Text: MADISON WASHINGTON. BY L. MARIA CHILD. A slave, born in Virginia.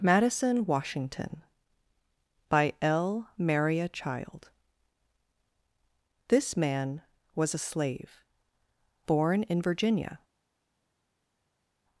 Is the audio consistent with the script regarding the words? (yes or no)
no